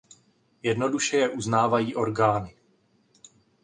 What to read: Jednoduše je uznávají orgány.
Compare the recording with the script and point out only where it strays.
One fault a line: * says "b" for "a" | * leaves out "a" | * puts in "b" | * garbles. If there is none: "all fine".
all fine